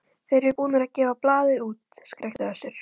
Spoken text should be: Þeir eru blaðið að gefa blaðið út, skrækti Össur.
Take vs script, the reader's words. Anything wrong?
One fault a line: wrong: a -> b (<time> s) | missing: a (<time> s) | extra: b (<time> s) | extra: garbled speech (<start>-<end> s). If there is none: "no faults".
wrong: blaðið -> búnir (0.6 s)